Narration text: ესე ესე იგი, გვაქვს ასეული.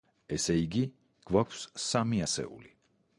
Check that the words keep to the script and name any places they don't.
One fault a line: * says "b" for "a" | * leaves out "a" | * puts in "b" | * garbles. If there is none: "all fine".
* leaves out "ესე"
* puts in "სამი"